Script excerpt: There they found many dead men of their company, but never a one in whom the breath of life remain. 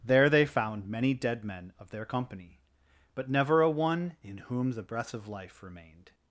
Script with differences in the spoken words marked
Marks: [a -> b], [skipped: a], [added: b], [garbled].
There they found many dead men of their company, but never a one in whom the breath of life [remain. -> remained]